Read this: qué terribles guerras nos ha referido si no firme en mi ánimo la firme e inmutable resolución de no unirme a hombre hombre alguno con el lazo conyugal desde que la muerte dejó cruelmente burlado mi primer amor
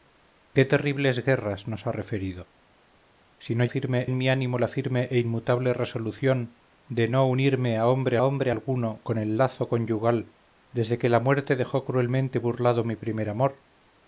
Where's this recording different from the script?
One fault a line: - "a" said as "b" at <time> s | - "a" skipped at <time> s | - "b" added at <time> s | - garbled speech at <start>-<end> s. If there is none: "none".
none